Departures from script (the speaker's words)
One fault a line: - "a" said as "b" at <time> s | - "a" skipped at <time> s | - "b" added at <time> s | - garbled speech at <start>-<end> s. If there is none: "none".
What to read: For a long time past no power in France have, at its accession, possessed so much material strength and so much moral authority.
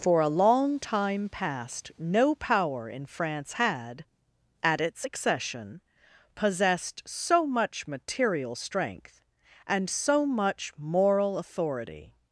- "have" said as "had" at 3.5 s